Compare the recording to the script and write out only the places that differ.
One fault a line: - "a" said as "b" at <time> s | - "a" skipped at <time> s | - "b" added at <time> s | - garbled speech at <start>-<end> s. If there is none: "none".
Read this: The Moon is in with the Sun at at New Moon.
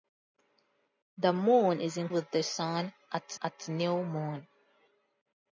none